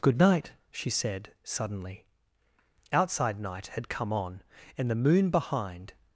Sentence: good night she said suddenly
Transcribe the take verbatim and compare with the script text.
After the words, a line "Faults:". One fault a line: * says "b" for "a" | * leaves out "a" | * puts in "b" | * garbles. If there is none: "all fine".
good night she said suddenly outside night had come on and the moon behind
Faults:
* puts in "outside night had come on and the moon behind"